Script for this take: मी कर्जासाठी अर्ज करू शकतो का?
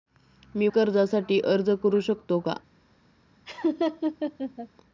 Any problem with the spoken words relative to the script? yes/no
no